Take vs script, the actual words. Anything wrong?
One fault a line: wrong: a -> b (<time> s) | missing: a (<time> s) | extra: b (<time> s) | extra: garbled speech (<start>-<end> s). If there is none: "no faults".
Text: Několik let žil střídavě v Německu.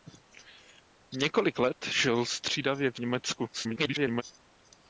extra: garbled speech (3.5-4.2 s)